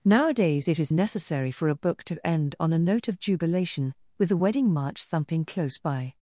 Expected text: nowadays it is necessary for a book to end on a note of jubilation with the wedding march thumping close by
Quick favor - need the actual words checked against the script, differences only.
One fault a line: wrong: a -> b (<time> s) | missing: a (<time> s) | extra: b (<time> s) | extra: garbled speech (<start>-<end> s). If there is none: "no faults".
no faults